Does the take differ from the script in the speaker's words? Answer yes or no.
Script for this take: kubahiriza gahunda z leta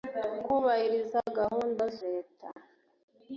no